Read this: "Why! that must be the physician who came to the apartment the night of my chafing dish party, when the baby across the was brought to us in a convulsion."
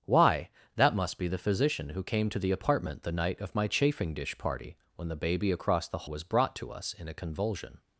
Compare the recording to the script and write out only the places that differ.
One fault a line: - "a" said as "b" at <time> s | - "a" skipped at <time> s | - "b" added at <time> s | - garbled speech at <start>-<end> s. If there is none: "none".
none